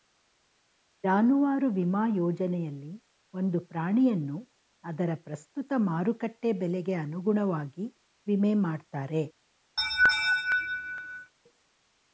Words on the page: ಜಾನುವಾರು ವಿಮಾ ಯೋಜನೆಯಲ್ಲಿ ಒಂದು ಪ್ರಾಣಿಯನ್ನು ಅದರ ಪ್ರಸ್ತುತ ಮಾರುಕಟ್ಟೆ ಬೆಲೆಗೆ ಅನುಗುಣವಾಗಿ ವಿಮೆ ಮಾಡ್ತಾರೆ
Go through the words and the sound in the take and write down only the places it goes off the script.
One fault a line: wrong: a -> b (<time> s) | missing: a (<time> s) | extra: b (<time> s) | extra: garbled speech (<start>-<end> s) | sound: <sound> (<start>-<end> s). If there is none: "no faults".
sound: laugh (9.8-11.3 s)